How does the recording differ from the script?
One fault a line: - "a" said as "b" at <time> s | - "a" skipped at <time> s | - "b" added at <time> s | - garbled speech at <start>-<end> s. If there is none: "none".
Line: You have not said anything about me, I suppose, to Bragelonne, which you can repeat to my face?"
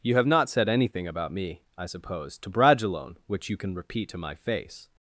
none